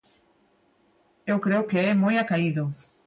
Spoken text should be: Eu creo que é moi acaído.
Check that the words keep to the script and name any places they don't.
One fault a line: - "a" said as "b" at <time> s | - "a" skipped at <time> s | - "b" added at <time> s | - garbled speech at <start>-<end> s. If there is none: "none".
none